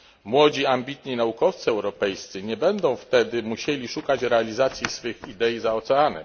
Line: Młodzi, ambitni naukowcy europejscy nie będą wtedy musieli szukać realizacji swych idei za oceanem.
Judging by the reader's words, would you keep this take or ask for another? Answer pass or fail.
pass